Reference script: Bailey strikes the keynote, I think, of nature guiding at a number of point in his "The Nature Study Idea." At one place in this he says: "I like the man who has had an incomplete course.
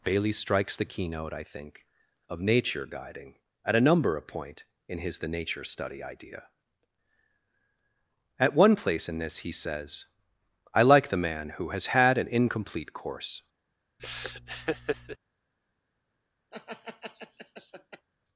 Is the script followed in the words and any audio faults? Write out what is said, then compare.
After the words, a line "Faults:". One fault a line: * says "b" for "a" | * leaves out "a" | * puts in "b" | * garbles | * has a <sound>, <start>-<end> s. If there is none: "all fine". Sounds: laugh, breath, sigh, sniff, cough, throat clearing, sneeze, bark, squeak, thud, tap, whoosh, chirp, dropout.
Bailey strikes the keynote, I think, of nature guiding at a number of point in his "The Nature Study Idea." At one place in this he says: "I like the man who has had an incomplete course.
Faults:
* has a laugh, 14.0-15.2 s
* has a laugh, 16.5-18.1 s